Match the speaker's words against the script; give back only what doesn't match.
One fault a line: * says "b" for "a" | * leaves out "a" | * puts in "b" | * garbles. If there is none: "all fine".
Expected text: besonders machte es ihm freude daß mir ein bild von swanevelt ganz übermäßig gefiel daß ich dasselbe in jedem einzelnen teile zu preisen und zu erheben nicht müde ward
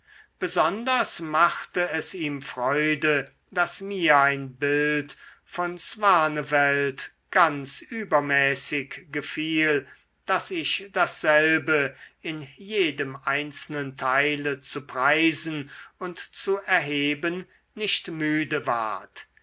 all fine